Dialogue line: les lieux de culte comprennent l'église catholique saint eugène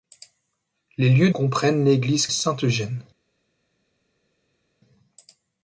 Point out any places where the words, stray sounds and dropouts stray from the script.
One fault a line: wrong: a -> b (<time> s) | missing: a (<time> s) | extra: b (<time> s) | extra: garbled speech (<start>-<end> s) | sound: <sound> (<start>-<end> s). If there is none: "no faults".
missing: de culte (1.3 s)
missing: catholique (2.3 s)